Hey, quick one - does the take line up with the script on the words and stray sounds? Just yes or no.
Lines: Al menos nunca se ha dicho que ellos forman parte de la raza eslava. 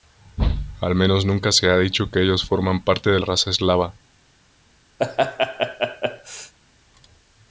no